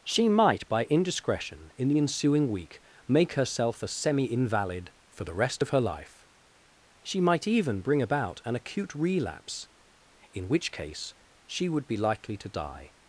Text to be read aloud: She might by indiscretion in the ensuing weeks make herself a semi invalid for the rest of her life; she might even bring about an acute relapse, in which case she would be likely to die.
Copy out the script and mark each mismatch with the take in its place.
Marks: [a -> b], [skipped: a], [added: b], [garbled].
She might by indiscretion in the ensuing [weeks -> week] make herself a semi invalid for the rest of her life; she might even bring about an acute relapse, in which case she would be likely to die.